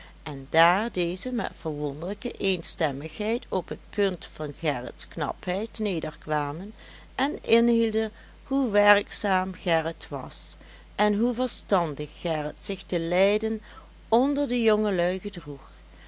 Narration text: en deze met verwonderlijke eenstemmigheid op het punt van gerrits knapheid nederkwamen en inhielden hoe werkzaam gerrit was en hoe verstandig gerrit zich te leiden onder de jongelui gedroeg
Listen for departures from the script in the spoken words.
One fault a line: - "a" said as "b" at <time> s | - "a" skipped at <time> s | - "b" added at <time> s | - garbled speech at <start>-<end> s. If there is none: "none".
- "daar" added at 0.5 s